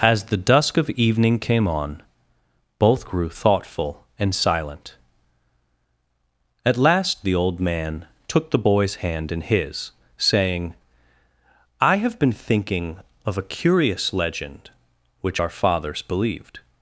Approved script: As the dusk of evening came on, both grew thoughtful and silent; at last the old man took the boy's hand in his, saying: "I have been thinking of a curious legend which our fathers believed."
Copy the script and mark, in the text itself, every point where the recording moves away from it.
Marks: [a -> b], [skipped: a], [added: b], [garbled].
As the dusk of evening came on, both grew thoughtful and silent; at last the old man took the boy's hand in his, saying: "I have been thinking of a curious legend which our fathers believed."